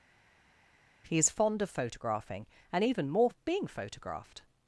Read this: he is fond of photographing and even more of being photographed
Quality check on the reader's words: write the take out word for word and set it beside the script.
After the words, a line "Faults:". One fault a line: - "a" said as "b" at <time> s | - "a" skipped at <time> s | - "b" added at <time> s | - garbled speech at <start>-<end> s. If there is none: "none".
he is fond of photographing and even more of being photographed
Faults:
none